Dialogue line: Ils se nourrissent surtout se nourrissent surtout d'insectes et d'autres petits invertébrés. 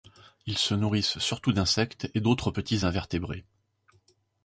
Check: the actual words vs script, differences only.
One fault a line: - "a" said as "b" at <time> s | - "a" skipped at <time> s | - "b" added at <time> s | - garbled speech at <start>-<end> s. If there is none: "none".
- "se nourrissent surtout" skipped at 1.5 s